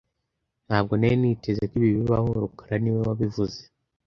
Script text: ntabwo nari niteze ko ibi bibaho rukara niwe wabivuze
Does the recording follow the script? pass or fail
pass